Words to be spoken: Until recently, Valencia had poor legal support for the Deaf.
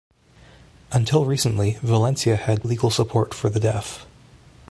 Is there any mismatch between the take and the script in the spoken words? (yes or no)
yes